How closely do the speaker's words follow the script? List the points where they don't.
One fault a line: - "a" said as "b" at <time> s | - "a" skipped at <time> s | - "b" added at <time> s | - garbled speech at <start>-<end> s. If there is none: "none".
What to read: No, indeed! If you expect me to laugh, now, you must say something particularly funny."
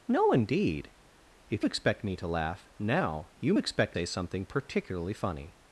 - "you" skipped at 1.6 s
- "must" said as "expect" at 3.6 s